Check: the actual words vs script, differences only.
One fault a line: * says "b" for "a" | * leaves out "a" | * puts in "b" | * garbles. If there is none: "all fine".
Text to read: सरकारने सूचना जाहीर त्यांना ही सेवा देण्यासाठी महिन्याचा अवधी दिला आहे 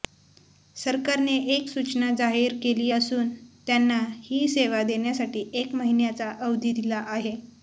* puts in "एक"
* puts in "केली असून"
* puts in "एक"